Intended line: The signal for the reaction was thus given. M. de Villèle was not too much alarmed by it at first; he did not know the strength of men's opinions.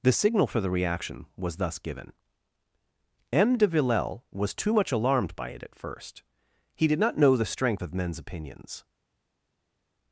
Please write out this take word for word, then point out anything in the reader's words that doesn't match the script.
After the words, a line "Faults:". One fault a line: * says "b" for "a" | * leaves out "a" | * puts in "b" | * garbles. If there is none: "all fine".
The signal for the reaction was thus given. M. de Villèle was too much alarmed by it at first; he did not know the strength of men's opinions.
Faults:
* leaves out "not"